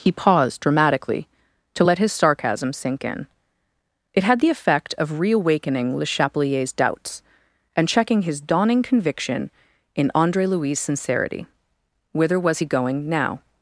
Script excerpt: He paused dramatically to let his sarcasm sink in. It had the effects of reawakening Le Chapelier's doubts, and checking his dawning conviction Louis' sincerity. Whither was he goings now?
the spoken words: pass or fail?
fail